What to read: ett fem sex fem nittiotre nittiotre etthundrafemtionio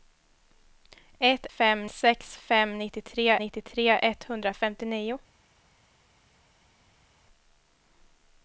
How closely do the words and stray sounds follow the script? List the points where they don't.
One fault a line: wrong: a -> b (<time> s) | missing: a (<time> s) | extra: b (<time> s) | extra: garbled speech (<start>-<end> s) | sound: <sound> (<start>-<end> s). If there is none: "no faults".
no faults